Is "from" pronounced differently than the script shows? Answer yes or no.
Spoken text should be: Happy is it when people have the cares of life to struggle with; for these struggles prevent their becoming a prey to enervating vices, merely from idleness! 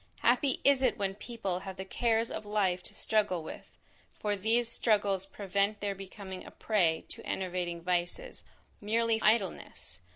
yes